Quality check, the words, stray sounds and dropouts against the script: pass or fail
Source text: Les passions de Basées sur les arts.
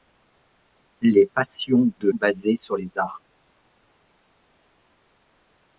pass